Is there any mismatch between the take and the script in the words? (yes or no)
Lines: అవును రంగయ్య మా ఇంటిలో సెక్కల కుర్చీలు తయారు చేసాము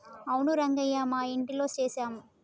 yes